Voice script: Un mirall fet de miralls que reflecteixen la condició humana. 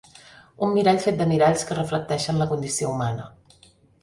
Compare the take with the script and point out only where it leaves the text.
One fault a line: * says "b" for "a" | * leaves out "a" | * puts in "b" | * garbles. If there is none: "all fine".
all fine